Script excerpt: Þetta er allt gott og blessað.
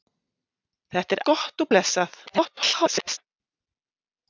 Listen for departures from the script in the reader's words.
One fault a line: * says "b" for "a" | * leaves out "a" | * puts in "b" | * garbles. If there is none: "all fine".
* leaves out "allt"
* garbles